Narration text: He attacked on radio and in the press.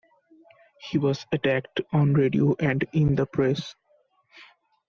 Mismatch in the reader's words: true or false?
true